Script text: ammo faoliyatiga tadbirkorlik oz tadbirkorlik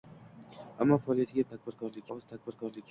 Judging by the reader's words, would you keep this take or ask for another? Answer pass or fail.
pass